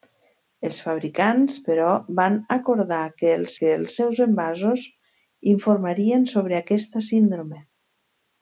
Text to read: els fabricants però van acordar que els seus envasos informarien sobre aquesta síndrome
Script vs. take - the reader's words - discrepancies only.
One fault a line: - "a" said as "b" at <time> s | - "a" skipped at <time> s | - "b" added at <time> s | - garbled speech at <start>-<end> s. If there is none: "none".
- "que els" added at 3.6 s